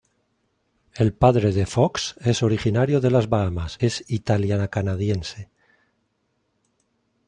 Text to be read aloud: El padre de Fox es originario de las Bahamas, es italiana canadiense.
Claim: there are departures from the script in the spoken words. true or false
false